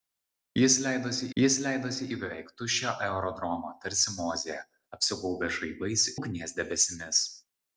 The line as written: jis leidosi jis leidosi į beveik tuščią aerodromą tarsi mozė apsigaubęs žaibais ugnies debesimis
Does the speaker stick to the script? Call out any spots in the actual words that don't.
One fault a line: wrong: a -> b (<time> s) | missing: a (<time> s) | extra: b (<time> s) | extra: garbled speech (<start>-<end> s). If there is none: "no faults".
no faults